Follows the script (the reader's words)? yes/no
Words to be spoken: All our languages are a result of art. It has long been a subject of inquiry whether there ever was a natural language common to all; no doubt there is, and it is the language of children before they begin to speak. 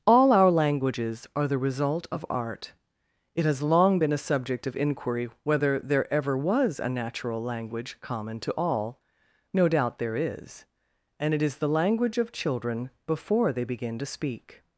no